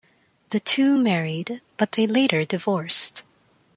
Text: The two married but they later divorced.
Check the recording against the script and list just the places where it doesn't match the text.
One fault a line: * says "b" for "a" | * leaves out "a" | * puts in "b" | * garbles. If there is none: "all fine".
all fine